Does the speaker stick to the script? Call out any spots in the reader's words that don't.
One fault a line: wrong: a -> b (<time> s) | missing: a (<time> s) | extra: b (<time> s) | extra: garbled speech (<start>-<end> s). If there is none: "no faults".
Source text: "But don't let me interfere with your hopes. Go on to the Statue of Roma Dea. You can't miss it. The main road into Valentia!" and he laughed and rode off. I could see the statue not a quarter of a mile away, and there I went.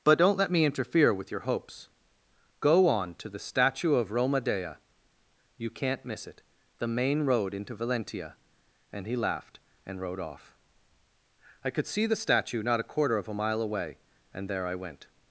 no faults